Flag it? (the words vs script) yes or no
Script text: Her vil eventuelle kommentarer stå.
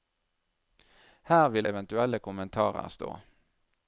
no